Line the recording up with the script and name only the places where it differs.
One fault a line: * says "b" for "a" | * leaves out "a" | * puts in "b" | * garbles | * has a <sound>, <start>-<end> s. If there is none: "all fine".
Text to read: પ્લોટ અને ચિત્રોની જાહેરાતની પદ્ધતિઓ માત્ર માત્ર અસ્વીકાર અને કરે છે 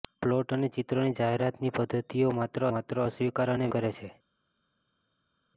all fine